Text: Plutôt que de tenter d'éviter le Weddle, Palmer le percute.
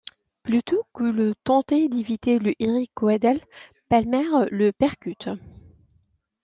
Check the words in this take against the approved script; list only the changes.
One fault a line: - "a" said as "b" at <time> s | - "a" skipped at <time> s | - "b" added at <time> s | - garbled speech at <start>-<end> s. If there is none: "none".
- "Eric" added at 2.6 s